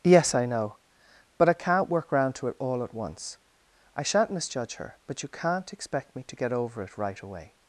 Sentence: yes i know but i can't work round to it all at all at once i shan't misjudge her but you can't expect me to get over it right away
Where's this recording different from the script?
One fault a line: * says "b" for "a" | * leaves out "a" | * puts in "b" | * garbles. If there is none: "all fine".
* leaves out "all at"